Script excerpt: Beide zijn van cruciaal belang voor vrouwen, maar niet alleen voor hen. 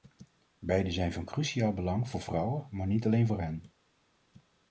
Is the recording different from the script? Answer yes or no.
no